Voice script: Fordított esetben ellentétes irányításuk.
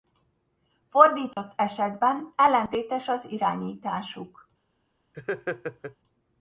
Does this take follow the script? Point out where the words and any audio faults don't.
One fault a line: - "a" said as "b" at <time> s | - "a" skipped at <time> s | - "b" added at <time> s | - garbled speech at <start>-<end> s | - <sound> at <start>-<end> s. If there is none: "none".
- dropout at 1.3-1.4 s
- "az" added at 3.1 s
- laugh at 5.1-6.0 s